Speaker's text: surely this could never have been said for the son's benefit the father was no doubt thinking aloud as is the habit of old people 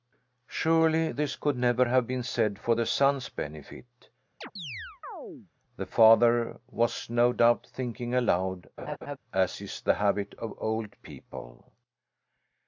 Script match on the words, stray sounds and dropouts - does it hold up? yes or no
no